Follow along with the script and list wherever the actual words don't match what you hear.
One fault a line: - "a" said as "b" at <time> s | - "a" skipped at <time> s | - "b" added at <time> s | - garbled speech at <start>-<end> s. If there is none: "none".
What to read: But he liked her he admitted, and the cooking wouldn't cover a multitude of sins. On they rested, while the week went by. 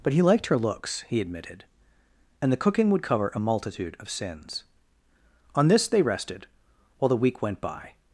- "looks" added at 0.6 s
- "wouldn't" said as "would" at 2.9 s
- "this" added at 5.7 s